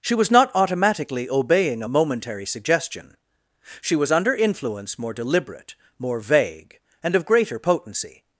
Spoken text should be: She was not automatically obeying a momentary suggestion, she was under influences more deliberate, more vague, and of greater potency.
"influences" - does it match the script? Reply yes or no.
no